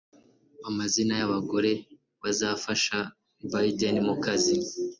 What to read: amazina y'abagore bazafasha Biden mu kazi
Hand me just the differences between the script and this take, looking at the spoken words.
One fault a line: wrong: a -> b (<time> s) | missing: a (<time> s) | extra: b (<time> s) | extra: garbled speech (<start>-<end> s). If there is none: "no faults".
no faults